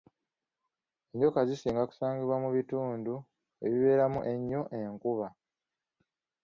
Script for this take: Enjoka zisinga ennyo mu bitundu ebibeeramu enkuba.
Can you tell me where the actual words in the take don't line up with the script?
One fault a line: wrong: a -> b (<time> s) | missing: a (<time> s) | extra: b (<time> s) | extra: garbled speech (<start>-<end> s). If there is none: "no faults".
wrong: ennyo -> kusangibwa (1.9 s)
extra: ennyo (4.3 s)